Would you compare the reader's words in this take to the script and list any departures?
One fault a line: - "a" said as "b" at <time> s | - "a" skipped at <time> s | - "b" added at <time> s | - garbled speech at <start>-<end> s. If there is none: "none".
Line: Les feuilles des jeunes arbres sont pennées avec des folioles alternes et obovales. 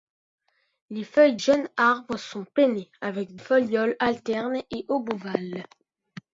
- "des" skipped at 1.4 s
- "des" skipped at 3.4 s